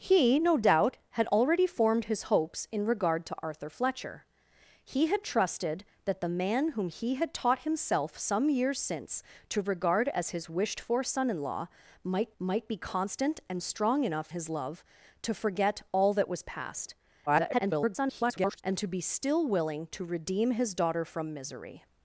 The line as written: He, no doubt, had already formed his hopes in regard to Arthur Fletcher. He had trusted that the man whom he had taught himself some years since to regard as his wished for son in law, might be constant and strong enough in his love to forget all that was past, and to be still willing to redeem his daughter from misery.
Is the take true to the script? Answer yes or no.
no